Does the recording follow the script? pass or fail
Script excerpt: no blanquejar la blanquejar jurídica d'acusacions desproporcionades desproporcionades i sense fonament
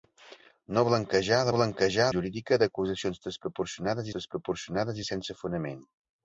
pass